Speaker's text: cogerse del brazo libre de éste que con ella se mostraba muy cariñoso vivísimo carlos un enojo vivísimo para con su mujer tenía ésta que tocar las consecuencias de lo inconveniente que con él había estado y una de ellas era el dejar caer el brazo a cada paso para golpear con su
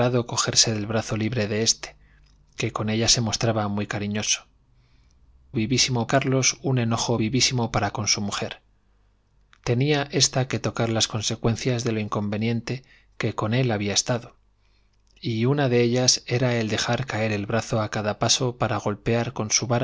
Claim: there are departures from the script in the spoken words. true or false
false